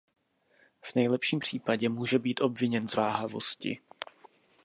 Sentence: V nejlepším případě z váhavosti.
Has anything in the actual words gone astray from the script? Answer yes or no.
yes